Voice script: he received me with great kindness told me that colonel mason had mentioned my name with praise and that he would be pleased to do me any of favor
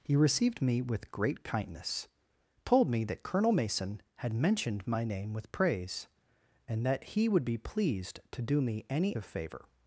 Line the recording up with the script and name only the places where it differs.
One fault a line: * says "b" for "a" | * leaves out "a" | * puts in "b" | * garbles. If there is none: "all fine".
all fine